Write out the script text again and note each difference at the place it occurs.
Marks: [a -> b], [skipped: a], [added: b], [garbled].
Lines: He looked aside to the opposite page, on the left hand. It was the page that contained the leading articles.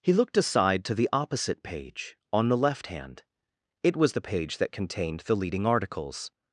He looked aside to the opposite page, on the left hand. It was the page that contained the leading articles.